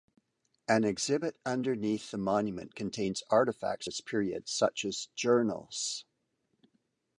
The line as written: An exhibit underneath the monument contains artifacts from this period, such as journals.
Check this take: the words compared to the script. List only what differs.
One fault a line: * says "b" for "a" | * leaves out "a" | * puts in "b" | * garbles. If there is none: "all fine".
* leaves out "from"